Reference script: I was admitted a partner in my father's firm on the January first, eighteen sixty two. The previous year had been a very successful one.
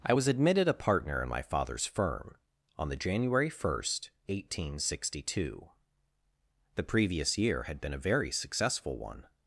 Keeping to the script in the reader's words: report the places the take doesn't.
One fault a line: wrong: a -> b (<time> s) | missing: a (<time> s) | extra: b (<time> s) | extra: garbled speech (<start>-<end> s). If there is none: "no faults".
no faults